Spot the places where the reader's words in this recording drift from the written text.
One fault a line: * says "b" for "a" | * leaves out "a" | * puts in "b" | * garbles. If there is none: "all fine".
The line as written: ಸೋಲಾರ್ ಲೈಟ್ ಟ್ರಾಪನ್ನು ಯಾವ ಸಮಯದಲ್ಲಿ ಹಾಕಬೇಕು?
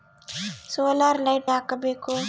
* leaves out "ಟ್ರಾಪನ್ನು ಯಾವ ಸಮಯದಲ್ಲಿ"